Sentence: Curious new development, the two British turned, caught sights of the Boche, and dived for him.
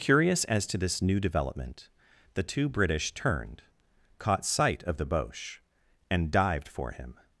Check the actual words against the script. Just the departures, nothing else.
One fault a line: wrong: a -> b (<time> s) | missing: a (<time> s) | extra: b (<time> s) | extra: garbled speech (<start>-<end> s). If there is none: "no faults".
extra: as to this (0.5 s)
wrong: sights -> sight (4.4 s)